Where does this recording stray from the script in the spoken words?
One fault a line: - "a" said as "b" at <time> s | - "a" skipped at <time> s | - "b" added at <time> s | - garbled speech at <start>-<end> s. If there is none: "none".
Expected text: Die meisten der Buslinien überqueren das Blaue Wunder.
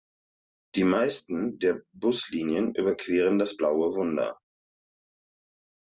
none